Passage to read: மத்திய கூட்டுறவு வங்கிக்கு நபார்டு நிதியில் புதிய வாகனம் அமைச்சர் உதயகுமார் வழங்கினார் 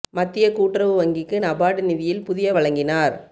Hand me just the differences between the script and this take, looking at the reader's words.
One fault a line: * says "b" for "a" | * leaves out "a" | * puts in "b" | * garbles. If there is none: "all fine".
* leaves out "வாகனம் அமைச்சர் உதயகுமார்"